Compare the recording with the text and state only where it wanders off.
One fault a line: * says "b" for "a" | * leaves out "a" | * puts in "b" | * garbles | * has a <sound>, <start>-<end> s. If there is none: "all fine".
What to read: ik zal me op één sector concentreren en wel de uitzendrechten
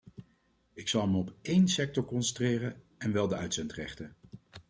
all fine